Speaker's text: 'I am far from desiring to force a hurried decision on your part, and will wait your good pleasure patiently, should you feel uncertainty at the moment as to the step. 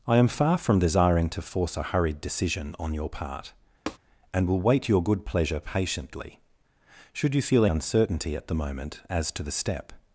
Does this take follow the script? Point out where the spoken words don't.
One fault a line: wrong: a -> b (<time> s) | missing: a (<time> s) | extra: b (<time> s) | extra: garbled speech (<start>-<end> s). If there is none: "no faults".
no faults